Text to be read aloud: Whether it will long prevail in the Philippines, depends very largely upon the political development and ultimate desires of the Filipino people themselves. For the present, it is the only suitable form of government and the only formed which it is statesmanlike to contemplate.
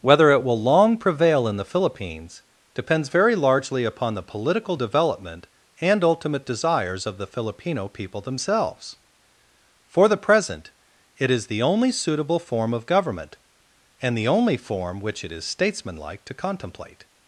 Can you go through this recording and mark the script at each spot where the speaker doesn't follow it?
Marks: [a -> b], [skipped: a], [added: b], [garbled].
Whether it will long prevail in the Philippines, depends very largely upon the political development and ultimate desires of the Filipino people themselves. For the present, it is the only suitable form of government and the only [formed -> form] which it is statesmanlike to contemplate.